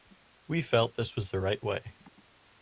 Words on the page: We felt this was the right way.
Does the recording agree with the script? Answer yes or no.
yes